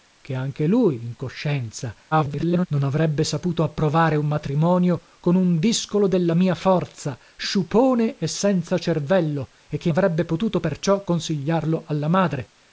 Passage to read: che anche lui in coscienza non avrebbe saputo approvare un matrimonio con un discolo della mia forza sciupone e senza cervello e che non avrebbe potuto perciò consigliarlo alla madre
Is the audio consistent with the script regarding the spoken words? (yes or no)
no